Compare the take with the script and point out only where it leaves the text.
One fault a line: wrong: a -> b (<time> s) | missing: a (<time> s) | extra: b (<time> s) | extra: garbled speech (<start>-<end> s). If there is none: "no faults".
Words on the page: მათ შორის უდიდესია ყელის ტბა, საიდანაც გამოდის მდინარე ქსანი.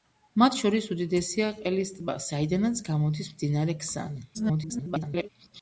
extra: garbled speech (4.3-5.3 s)